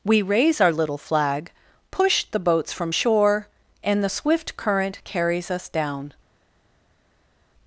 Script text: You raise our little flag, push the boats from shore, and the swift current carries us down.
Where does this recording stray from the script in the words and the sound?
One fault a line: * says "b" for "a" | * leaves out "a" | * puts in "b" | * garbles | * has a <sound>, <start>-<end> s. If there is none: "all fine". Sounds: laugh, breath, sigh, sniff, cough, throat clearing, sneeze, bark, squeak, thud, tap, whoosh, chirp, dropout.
* says "We" for "You"